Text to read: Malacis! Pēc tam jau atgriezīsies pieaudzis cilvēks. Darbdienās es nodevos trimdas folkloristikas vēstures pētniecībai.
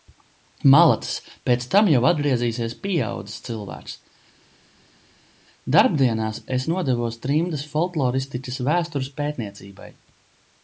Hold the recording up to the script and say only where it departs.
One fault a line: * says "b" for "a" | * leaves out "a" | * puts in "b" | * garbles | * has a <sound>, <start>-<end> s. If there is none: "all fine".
all fine